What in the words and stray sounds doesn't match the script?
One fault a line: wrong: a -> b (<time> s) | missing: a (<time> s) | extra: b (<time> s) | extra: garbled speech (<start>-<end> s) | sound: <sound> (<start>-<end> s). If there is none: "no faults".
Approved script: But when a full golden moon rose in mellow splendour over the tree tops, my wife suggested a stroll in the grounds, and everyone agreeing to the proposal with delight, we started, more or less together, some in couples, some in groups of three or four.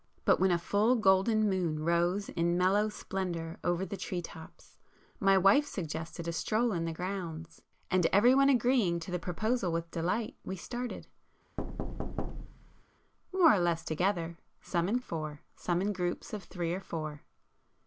sound: thud (11.6-12.8 s)
wrong: couples -> four (15.0 s)